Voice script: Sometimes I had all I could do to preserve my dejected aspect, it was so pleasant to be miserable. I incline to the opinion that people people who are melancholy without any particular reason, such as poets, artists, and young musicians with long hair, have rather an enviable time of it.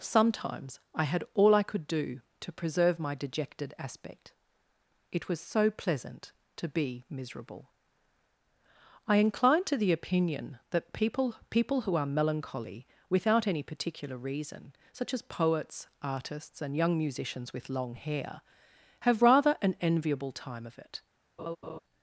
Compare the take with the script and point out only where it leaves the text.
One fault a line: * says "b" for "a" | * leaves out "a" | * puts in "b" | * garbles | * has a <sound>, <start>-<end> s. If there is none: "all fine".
* has a laugh, 21.4-21.8 s